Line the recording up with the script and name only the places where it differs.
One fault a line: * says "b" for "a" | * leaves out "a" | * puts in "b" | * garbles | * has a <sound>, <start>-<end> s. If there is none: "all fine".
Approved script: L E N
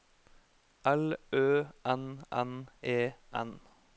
* puts in "Ø N N"